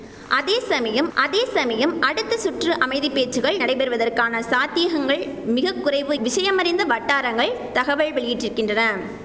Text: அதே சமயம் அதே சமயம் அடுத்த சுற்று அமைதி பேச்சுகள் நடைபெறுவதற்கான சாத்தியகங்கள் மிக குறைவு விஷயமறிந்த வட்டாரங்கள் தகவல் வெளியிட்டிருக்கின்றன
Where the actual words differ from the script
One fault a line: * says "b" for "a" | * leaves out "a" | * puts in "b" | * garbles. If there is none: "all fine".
all fine